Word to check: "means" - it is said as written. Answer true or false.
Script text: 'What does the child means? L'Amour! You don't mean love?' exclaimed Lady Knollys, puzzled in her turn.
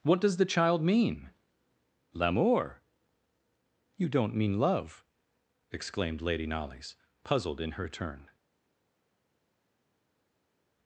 false